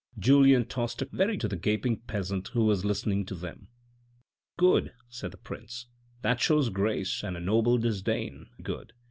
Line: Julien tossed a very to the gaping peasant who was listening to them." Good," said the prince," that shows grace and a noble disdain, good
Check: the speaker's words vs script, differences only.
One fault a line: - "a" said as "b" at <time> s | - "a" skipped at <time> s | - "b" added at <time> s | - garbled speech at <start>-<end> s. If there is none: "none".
none